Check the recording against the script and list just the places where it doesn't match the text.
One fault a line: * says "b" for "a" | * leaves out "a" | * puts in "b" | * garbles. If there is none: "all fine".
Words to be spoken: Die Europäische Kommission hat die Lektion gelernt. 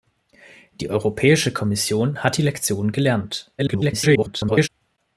* garbles